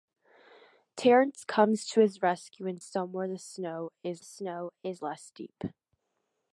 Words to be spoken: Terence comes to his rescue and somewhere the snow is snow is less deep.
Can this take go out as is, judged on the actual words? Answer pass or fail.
pass